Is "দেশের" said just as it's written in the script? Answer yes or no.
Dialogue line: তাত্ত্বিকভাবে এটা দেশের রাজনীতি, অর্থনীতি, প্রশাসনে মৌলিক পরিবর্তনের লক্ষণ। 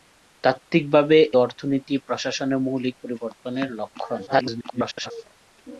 no